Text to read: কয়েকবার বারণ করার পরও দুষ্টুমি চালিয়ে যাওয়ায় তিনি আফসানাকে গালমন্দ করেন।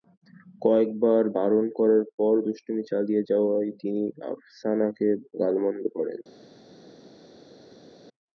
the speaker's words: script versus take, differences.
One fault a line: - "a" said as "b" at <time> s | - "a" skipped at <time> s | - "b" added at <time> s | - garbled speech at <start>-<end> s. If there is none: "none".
none